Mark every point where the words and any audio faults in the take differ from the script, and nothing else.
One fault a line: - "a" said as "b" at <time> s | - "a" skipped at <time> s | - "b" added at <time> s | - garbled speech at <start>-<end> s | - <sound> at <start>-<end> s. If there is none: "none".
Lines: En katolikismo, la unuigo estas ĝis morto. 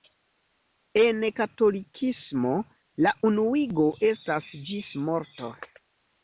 none